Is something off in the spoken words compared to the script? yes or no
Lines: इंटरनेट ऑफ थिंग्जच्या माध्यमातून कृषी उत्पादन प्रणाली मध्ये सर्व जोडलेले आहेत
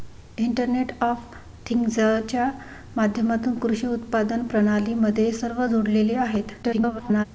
yes